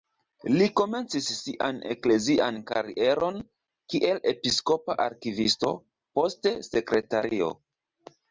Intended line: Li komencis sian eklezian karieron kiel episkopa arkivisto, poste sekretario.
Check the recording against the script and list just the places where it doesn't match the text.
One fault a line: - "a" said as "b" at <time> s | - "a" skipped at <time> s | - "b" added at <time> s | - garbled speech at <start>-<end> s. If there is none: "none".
none